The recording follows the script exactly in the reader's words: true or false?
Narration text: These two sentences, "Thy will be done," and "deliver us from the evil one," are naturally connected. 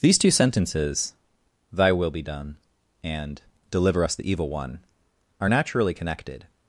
false